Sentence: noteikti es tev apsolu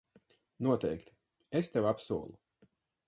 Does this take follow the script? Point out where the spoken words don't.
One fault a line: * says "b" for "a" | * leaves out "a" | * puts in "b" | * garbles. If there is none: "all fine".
all fine